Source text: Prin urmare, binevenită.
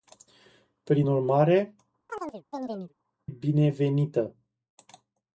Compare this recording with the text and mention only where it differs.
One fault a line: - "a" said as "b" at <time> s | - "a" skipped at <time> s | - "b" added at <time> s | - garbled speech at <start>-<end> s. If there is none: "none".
none